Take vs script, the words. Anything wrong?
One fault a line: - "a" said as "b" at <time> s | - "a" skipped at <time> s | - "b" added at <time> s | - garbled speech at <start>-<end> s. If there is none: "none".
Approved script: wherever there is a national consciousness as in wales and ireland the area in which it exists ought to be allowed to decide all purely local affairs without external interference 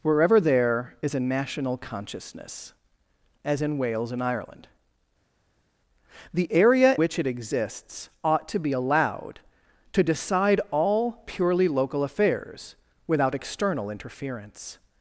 - "in" skipped at 7.0 s